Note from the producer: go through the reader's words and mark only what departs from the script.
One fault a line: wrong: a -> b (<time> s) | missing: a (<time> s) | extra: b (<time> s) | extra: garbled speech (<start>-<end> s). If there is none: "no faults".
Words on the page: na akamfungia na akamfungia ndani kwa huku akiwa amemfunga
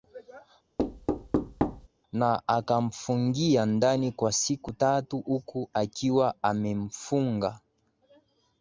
wrong: na akamfungia ndani kwa -> ndani kwa siku tatu (3.7 s)